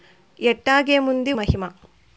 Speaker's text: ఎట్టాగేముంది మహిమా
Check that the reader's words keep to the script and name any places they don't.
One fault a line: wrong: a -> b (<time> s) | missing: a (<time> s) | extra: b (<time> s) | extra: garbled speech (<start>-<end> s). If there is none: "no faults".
no faults